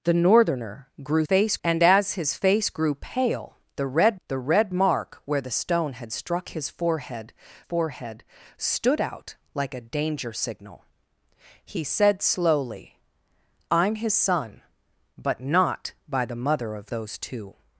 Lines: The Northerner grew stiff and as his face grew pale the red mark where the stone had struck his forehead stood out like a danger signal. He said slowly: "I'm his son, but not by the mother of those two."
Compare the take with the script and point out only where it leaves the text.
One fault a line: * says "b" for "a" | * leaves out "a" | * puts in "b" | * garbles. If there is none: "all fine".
* says "face" for "stiff"
* puts in "the red"
* puts in "forehead"